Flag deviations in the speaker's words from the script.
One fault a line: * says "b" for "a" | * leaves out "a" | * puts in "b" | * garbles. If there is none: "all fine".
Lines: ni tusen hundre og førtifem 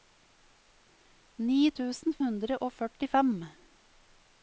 all fine